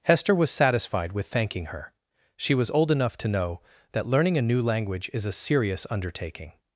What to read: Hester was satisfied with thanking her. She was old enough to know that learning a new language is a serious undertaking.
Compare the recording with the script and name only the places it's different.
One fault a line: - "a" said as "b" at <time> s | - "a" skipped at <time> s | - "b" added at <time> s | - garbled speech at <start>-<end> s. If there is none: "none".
none